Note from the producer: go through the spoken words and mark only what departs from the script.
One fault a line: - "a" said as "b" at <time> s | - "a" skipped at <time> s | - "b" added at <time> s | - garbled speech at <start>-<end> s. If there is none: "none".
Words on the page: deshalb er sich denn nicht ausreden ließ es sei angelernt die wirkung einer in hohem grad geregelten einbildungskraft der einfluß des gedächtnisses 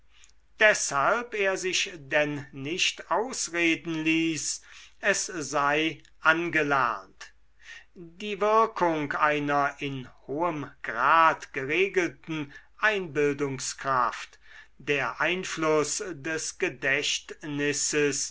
none